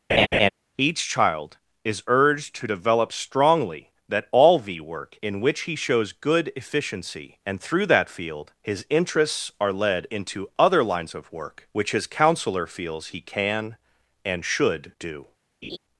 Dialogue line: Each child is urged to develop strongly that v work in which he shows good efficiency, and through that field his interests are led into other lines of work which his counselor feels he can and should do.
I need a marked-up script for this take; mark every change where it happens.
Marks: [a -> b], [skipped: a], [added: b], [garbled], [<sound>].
[laugh] Each child is urged to develop strongly that [added: all] v work in which he shows good efficiency, and through that field his interests are led into other lines of work which his counselor feels he can and should do. [laugh]